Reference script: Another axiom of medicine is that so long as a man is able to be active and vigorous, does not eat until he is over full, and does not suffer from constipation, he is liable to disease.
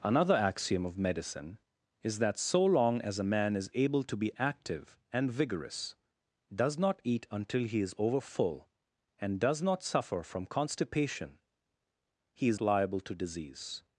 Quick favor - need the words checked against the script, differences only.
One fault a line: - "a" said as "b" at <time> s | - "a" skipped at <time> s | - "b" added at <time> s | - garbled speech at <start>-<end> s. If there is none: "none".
none